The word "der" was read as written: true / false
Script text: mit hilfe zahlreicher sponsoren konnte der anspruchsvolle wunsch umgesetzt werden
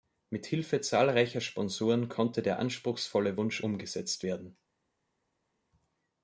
true